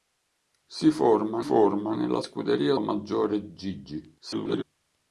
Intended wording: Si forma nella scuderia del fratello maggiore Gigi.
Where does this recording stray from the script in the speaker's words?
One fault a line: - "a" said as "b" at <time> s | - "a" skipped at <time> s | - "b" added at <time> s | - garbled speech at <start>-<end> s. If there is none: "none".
- "forma" added at 1.4 s
- "del fratello" skipped at 2.7 s
- garbled speech at 4.2-4.6 s